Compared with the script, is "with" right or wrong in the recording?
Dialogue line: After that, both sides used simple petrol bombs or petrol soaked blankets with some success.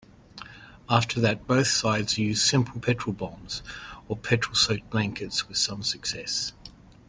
right